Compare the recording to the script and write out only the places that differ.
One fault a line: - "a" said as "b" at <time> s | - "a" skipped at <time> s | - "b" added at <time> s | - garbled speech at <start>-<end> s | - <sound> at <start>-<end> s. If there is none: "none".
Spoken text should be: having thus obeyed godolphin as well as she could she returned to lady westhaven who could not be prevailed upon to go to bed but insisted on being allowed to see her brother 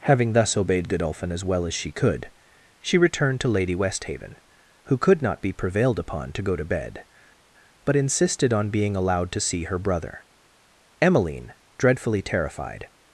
- "emmeline dreadfully terrified" added at 11.0 s